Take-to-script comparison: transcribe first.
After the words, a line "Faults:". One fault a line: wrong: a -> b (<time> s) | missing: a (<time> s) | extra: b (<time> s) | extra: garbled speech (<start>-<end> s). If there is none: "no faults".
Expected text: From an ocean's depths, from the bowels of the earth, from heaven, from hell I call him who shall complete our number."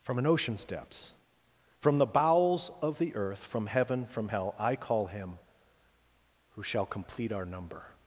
From an ocean's depths, from the bowels of the earth, from heaven, from hell I call him who shall complete our number."
Faults:
no faults